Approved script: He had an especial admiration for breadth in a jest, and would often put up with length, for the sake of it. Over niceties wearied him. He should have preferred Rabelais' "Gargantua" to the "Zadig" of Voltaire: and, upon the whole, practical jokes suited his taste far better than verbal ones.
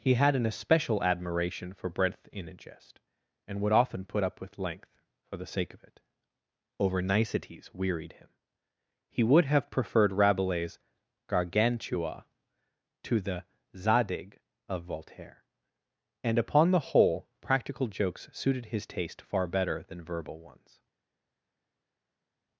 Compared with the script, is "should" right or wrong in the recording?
wrong